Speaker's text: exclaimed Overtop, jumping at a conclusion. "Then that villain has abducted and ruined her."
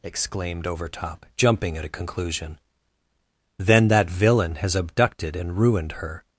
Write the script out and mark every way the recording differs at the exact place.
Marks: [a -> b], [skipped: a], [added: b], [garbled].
exclaimed Overtop, jumping at a conclusion. "Then that villain has abducted and ruined her."